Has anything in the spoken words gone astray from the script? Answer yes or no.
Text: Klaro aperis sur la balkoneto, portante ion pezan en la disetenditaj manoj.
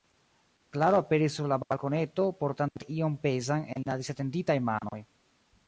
no